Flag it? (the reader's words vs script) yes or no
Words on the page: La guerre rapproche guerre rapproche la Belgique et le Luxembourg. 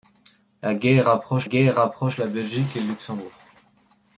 no